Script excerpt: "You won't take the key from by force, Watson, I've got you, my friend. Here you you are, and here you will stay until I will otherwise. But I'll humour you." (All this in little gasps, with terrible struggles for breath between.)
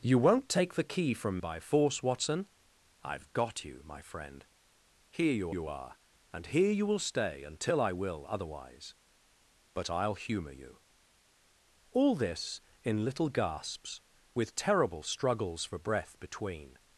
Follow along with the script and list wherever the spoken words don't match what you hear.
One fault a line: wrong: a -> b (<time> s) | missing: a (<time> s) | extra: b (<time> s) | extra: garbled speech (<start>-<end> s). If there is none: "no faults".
no faults